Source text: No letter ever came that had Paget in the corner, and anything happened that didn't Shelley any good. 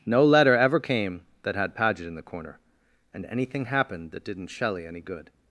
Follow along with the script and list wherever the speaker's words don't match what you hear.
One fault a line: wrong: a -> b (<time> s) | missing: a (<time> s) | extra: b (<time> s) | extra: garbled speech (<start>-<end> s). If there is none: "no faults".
no faults